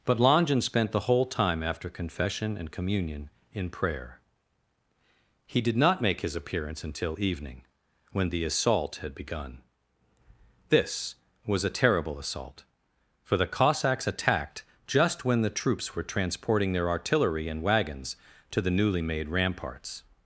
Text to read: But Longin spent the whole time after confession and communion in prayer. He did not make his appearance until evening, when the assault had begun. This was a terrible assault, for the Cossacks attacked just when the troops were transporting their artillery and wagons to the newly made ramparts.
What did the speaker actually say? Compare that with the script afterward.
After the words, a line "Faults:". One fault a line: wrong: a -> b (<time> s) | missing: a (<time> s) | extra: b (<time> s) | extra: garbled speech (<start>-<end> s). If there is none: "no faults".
But Longin spent the whole time after confession and communion in prayer. He did not make his appearance until evening, when the assault had begun. This was a terrible assault, for the Cossacks attacked just when the troops were transporting their artillery and wagons to the newly made ramparts.
Faults:
no faults